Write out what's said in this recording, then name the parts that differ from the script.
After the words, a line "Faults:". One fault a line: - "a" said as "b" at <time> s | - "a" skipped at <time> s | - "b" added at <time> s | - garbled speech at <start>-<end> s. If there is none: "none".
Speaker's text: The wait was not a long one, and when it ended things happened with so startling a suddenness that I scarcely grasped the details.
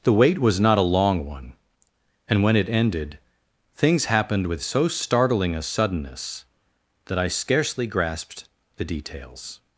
The wait was not a long one, and when it ended things happened with so startling a suddenness that I scarcely grasped the details.
Faults:
none